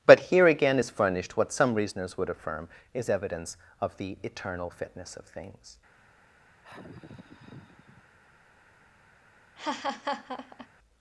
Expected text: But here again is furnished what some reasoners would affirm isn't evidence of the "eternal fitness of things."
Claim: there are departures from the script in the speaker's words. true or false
true